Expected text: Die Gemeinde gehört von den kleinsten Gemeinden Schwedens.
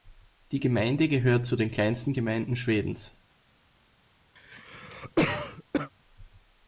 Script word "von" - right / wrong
wrong